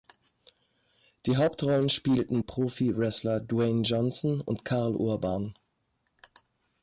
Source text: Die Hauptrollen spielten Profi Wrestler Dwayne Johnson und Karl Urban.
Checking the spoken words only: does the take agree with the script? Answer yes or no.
yes